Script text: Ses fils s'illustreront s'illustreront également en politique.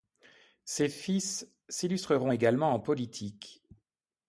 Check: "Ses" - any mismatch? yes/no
no